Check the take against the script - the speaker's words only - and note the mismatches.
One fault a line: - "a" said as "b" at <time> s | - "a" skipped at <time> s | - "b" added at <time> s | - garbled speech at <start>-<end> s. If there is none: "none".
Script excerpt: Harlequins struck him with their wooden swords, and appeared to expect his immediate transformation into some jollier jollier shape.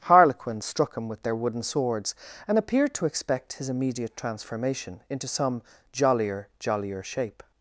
none